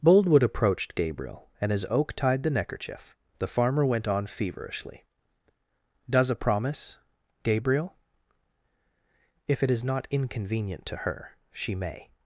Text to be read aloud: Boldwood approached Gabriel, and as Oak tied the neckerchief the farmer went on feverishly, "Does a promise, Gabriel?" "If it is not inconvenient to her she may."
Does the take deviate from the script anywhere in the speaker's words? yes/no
no